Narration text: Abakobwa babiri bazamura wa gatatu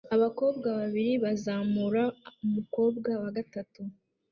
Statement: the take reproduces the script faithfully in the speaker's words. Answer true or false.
false